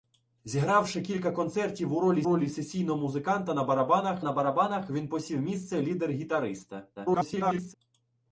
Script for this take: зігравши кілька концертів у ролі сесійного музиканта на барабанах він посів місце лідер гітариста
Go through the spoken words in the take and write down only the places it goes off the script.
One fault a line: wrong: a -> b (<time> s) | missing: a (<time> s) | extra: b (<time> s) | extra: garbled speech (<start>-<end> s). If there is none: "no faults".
extra: ролі (2.2 s)
extra: на барабанах (4.2 s)
extra: garbled speech (6.9-7.7 s)